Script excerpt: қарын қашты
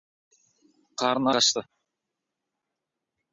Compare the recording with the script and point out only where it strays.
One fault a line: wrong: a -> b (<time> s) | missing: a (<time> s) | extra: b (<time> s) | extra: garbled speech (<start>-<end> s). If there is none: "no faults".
no faults